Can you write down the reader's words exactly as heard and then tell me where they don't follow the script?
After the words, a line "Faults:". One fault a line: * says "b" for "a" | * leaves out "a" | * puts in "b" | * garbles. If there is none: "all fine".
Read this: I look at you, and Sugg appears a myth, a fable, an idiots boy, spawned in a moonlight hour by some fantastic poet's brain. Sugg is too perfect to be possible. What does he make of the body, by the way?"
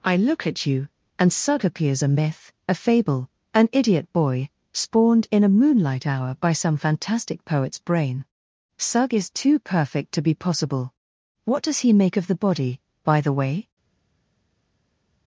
I look at you, and Sugg appears a myth, a fable, an idiot boy, spawned in a moonlight hour by some fantastic poet's brain. Sugg is too perfect to be possible. What does he make of the body, by the way?"
Faults:
* says "idiot" for "idiots"